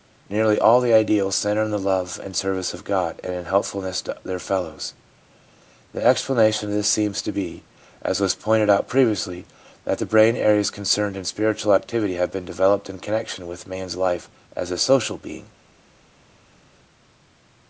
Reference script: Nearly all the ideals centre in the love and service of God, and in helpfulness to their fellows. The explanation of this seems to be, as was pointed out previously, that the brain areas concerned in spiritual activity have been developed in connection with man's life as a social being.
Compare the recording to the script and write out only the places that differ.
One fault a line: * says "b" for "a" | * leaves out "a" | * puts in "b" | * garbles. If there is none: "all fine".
all fine